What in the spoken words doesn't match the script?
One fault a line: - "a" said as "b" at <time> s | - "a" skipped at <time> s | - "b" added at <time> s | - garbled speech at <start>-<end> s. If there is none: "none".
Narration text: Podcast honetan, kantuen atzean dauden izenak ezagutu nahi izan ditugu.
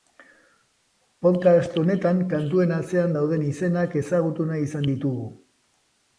none